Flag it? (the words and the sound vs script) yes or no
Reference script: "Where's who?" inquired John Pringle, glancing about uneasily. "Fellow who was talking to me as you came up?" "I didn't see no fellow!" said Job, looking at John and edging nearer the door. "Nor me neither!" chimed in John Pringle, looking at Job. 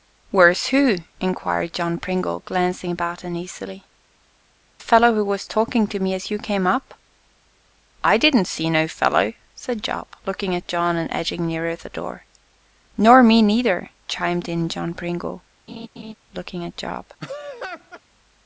yes